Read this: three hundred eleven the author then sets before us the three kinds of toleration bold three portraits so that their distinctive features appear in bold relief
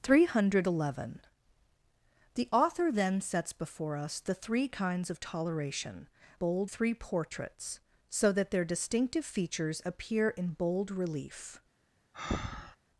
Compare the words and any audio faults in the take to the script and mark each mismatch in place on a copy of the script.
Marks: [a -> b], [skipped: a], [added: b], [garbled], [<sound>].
three hundred eleven the author then sets before us the three kinds of toleration bold three portraits so that their distinctive features appear in bold relief [breath]